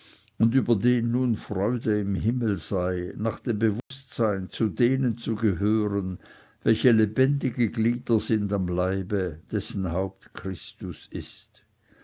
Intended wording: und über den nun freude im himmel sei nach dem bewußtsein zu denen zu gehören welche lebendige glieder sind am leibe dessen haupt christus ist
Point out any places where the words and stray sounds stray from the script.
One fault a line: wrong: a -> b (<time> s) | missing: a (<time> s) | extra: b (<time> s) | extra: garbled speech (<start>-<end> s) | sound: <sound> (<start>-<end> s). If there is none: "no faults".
sound: dropout (3.8-3.9 s)